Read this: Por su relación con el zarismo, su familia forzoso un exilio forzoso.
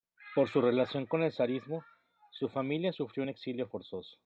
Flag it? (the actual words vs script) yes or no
yes